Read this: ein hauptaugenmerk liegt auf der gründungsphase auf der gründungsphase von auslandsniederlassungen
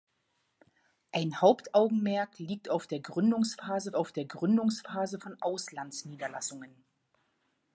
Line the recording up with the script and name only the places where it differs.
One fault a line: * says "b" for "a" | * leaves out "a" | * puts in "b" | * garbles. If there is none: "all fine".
all fine